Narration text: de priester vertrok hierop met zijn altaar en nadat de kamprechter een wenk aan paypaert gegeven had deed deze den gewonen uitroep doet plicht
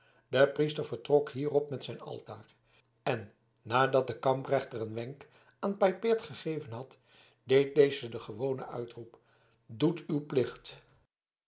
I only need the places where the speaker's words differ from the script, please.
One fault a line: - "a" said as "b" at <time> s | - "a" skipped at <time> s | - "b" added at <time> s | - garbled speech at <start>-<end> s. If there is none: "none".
- "uw" added at 10.1 s